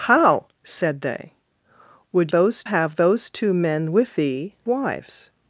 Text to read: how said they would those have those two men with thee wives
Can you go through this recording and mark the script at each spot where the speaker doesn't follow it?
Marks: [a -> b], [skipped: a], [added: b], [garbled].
how said they would those have those two men with thee wives